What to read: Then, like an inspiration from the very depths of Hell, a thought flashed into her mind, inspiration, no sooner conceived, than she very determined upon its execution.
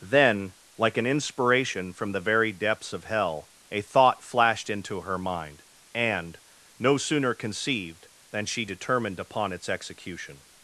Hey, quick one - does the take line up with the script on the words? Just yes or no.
no